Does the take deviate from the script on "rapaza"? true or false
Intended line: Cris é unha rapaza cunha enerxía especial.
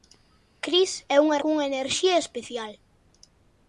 true